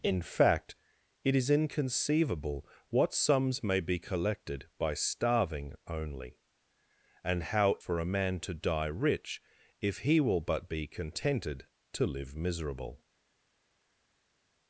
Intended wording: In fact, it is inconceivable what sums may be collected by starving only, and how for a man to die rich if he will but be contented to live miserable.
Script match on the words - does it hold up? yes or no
yes